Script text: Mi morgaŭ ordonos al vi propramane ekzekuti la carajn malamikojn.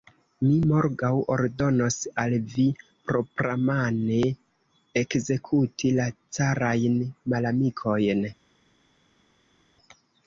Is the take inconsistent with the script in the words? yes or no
no